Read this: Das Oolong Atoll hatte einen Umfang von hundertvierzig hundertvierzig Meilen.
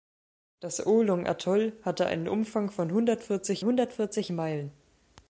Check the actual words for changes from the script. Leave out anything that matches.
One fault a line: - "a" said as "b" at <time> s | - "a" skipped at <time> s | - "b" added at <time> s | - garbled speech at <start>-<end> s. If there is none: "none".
none